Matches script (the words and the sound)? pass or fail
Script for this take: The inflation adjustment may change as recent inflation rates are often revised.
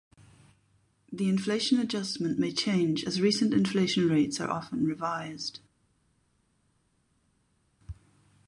pass